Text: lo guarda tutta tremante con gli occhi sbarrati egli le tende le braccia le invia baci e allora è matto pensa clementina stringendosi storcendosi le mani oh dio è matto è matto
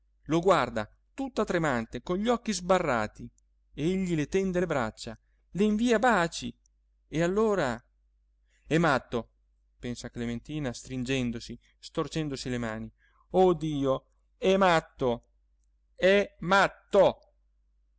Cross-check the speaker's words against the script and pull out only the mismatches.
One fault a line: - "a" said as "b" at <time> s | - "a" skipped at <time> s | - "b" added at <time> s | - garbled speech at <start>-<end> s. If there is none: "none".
none